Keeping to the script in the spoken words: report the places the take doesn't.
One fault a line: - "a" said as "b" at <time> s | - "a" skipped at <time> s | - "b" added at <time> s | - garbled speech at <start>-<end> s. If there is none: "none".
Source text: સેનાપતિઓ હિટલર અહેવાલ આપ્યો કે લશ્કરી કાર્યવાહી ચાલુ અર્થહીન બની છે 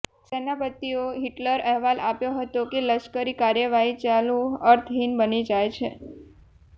- "હતો" added at 2.4 s
- "જાય" added at 5.5 s